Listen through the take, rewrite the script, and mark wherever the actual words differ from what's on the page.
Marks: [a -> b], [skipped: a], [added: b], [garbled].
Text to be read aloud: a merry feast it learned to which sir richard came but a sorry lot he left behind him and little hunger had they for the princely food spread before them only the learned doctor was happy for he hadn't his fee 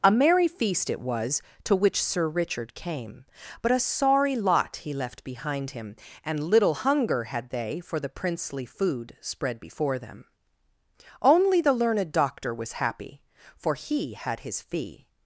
a merry feast it [learned -> was] to which sir richard came but a sorry lot he left behind him and little hunger had they for the princely food spread before them only the learned doctor was happy for he [hadn't -> had] his fee